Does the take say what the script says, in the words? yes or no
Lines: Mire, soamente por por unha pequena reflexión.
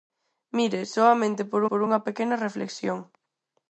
yes